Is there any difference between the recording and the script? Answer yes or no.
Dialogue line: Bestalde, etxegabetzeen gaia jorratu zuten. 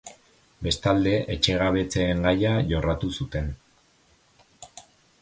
no